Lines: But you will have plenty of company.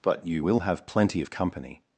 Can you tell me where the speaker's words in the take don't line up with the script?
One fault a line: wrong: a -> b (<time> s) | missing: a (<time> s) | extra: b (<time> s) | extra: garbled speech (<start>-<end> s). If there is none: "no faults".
no faults